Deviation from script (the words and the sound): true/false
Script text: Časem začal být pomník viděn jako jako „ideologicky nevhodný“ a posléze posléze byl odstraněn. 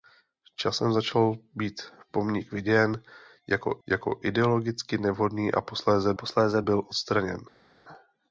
false